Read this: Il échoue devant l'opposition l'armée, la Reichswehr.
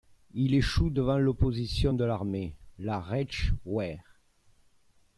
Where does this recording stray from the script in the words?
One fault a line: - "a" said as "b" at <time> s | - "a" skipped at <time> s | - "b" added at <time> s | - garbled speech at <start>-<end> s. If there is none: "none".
- "de" added at 1.9 s